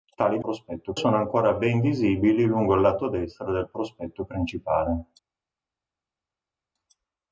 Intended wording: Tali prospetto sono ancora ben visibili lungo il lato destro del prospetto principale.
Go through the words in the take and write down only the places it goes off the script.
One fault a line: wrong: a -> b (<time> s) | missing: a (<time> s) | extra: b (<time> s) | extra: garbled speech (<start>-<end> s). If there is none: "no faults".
no faults